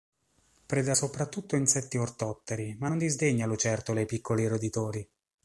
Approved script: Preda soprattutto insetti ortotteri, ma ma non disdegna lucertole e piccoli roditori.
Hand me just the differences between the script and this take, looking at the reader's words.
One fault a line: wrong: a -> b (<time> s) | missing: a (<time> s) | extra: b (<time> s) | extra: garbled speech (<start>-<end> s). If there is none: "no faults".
missing: ma (2.9 s)